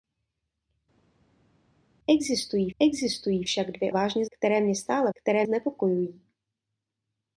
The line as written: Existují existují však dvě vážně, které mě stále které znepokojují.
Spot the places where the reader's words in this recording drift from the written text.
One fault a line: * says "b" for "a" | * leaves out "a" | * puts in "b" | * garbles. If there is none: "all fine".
all fine